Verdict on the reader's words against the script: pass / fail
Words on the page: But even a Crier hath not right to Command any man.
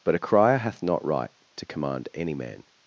fail